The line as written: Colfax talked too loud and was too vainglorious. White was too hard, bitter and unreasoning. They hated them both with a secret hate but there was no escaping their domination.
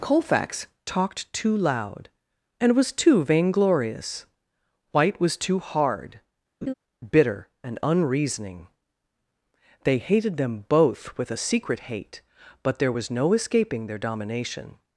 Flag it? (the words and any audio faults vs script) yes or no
yes